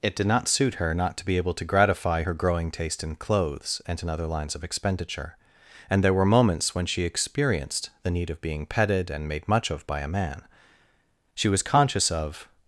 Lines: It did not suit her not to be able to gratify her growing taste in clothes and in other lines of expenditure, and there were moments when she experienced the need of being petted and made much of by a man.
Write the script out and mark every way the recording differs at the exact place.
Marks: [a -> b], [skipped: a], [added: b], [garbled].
It did not suit her not to be able to gratify her growing taste in clothes and in other lines of expenditure, and there were moments when she experienced the need of being petted and made much of by a man. [added: She was conscious of]